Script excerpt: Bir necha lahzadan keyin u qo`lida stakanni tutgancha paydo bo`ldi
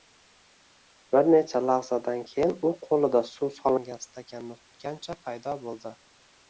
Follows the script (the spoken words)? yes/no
no